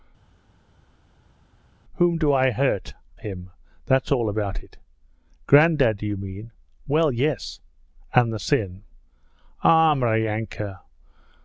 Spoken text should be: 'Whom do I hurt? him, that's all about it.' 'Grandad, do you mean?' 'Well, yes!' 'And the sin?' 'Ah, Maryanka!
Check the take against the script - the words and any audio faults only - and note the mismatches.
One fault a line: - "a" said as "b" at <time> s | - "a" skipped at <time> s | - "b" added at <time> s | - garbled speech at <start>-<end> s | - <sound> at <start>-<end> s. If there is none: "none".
none